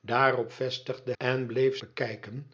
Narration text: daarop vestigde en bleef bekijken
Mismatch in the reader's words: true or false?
false